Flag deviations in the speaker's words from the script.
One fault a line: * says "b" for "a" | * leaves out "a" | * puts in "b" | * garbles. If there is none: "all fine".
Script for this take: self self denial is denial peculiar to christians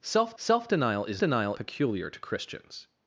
all fine